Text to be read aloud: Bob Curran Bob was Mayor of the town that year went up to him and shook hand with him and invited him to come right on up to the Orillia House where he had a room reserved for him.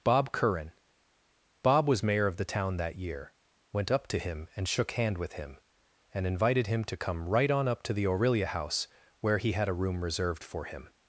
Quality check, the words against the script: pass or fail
pass